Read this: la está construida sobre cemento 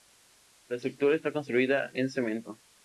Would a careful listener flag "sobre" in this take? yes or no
yes